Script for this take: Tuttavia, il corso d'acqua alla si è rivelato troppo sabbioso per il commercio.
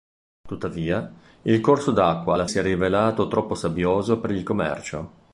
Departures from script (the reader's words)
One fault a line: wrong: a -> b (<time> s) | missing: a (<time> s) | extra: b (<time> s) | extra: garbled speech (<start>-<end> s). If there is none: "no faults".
no faults